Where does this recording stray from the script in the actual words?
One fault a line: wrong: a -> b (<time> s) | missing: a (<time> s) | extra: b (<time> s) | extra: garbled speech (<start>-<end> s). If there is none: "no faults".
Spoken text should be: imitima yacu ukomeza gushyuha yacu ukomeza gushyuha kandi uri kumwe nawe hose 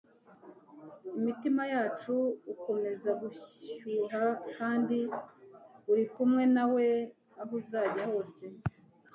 missing: yacu ukomeza gushyuha (4.2 s)
extra: aho uzajya (7.4 s)